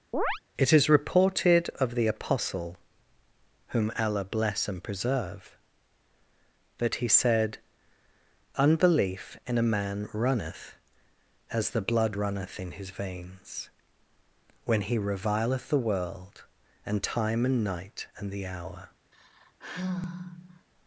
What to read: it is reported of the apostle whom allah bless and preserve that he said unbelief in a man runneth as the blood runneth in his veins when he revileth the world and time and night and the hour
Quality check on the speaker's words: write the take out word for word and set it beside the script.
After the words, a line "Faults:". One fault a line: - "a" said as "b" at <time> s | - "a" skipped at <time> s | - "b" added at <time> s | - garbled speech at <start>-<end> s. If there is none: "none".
it is reported of the apostle whom allah bless and preserve that he said unbelief in a man runneth as the blood runneth in his veins when he revileth the world and time and night and the hour
Faults:
none